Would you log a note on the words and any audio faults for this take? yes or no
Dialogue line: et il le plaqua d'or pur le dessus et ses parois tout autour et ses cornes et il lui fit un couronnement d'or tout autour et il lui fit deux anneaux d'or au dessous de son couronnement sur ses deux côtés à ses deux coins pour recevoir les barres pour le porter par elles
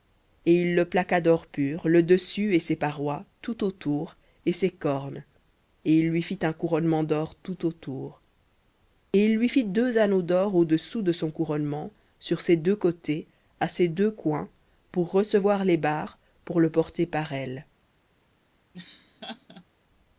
yes